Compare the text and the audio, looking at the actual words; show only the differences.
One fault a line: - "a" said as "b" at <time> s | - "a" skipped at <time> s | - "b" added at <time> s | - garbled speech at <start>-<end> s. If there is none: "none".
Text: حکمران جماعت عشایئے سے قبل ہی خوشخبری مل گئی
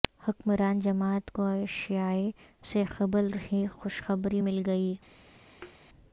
- "کو" added at 1.3 s